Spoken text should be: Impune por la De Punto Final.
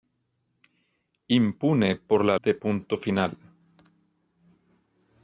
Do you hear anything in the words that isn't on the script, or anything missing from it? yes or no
no